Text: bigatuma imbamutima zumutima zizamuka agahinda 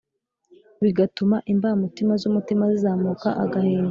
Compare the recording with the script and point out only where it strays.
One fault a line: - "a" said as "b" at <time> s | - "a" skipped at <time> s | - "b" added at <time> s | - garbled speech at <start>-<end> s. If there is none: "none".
none